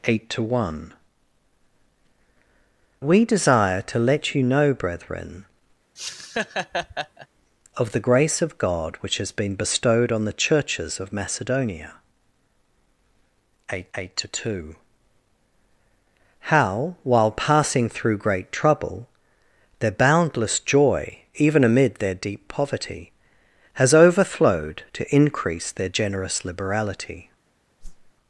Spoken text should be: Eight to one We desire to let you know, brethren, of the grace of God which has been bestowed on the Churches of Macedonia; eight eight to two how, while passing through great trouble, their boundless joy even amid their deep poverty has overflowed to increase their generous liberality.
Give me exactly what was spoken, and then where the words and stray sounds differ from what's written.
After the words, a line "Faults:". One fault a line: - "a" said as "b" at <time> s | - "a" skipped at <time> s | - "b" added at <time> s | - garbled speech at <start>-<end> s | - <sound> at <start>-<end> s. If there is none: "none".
Eight to one We desire to let you know, brethren, of the grace of God which has been bestowed on the Churches of Macedonia; eight eight to two how, while passing through great trouble, their boundless joy even amid their deep poverty has overflowed to increase their generous liberality.
Faults:
- laugh at 6.0-7.3 s
- whoosh at 27.8-28.1 s